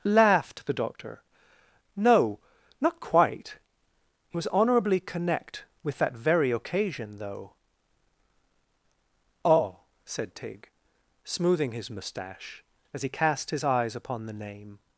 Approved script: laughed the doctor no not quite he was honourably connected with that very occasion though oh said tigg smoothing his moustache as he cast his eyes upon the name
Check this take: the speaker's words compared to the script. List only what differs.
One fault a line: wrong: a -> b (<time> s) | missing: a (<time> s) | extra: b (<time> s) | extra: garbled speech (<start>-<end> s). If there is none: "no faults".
wrong: connected -> connect (5.0 s)